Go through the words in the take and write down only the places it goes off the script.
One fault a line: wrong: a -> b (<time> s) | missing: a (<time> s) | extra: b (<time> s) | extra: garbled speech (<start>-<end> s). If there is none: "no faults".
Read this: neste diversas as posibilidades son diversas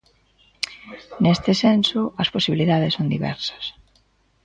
wrong: diversas -> senso (1.6 s)